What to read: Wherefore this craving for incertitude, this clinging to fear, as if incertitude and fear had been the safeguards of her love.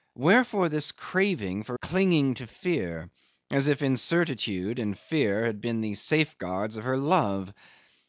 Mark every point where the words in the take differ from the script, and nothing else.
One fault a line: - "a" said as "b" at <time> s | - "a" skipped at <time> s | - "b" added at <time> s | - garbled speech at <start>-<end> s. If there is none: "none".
- "incertitude this" skipped at 1.8 s